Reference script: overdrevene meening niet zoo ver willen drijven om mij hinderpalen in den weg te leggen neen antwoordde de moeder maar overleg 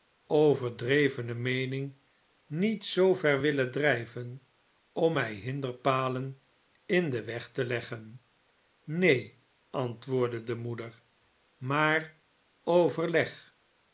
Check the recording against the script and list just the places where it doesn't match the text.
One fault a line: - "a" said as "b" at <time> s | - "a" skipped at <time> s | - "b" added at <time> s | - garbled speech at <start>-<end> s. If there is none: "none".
none